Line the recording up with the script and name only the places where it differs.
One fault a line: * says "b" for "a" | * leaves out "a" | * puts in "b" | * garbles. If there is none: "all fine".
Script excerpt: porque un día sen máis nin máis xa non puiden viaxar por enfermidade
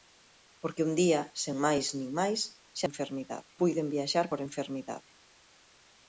* says "enfermidade" for "non"